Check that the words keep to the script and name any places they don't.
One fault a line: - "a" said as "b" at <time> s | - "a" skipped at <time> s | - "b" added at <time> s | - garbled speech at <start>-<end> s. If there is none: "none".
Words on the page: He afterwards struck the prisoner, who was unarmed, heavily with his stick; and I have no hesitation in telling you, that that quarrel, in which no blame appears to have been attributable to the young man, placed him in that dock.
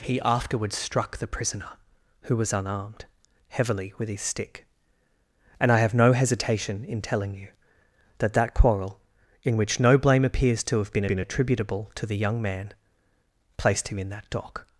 - "been" added at 11.0 s